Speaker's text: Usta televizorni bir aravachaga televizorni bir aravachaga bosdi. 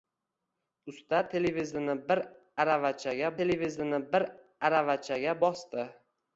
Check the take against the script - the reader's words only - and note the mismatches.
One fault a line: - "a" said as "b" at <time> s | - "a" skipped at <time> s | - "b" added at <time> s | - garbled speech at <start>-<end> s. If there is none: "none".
none